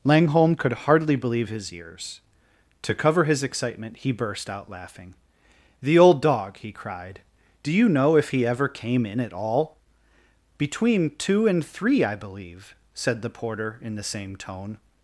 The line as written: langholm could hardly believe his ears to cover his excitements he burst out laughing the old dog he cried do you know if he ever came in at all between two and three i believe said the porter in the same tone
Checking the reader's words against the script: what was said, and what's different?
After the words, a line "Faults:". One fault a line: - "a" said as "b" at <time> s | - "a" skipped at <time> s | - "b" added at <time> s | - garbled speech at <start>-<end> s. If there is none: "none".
langholm could hardly believe his ears to cover his excitement he burst out laughing the old dog he cried do you know if he ever came in at all between two and three i believe said the porter in the same tone
Faults:
- "excitements" said as "excitement" at 3.4 s